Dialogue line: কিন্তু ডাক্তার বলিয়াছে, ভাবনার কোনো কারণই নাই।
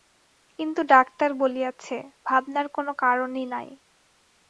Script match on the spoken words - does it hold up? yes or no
yes